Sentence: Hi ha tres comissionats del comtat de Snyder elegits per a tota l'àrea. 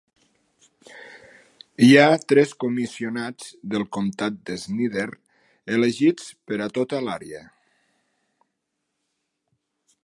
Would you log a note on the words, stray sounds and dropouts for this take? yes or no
no